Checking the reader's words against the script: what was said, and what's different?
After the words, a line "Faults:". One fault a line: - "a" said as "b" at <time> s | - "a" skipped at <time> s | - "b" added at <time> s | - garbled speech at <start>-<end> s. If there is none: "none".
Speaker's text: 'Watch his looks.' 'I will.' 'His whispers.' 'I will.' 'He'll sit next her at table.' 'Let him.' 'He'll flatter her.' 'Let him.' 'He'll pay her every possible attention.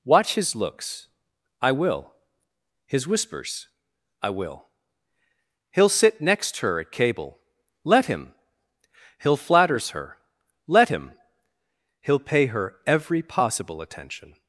'Watch his looks.' 'I will.' 'His whispers.' 'I will.' 'He'll sit next her at cable.' 'Let him.' 'He'll flatters her.' 'Let him.' 'He'll pay her every possible attention.
Faults:
- "table" said as "cable" at 6.9 s
- "flatter" said as "flatters" at 9.4 s